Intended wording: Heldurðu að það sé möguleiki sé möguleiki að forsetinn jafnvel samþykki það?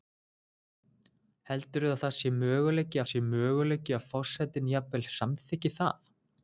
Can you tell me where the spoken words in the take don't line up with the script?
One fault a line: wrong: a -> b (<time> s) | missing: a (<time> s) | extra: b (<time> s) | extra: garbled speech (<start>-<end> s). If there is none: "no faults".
no faults